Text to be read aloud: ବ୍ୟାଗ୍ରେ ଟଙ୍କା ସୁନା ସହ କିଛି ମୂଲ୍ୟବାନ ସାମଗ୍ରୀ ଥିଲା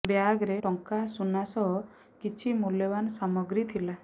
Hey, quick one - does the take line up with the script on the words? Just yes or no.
yes